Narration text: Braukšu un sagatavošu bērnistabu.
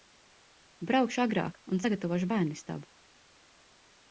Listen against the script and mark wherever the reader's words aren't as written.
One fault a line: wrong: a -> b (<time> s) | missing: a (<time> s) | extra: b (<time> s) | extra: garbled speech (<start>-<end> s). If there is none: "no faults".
extra: agrāk (1.2 s)